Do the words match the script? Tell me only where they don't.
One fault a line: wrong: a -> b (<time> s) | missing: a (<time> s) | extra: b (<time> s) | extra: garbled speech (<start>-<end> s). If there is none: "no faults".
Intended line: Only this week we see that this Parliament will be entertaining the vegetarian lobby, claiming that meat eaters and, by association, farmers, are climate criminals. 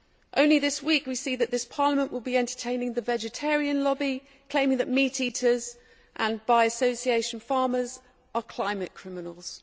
no faults